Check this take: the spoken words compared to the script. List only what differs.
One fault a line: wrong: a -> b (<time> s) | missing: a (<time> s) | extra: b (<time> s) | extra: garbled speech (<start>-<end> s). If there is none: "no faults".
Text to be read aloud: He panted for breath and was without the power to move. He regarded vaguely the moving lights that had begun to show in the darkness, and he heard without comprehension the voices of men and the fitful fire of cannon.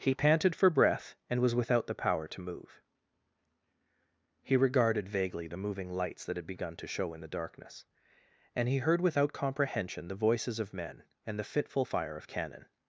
no faults